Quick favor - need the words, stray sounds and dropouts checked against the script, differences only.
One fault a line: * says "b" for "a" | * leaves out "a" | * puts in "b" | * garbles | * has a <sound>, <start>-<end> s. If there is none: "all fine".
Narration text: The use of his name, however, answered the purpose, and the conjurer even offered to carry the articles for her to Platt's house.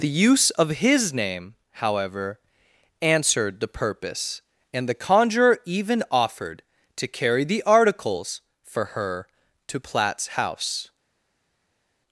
all fine